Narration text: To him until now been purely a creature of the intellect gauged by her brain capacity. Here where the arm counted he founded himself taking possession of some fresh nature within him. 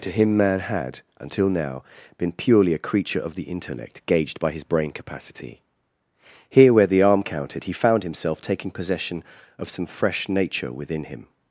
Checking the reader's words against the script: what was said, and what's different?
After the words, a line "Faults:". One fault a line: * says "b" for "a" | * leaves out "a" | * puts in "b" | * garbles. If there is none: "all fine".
To him man had until now been purely a creature of the intellect gauged by his brain capacity. Here where the arm counted he found himself taking possession of some fresh nature within him.
Faults:
* puts in "man had"
* says "his" for "her"
* says "found" for "founded"